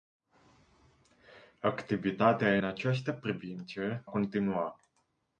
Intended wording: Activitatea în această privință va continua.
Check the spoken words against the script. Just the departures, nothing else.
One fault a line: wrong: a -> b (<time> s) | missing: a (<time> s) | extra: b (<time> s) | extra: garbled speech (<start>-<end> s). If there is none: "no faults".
missing: în (2.6 s)
missing: va (4.1 s)